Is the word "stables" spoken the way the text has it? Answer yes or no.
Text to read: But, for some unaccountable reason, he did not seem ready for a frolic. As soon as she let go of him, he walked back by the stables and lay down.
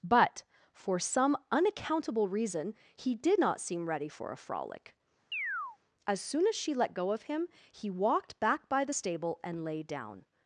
no